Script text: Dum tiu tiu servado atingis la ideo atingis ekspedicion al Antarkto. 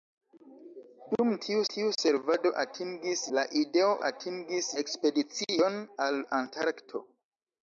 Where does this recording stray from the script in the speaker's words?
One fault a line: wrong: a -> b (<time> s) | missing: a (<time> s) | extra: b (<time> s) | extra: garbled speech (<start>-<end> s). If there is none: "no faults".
no faults